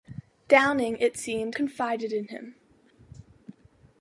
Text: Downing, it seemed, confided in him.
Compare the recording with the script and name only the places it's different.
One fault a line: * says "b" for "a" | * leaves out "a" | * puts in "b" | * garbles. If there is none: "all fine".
all fine